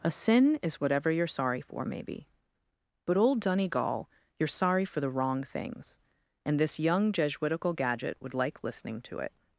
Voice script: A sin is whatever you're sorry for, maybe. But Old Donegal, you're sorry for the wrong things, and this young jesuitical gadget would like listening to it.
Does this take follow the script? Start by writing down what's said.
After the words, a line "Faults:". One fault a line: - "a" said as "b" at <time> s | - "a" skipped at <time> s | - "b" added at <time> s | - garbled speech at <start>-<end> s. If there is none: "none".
A sin is whatever you're sorry for, maybe. But Old Donegal, you're sorry for the wrong things, and this young jesuitical gadget would like listening to it.
Faults:
none